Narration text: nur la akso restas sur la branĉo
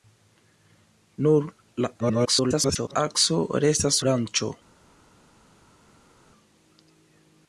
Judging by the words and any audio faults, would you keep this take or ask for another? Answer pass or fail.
fail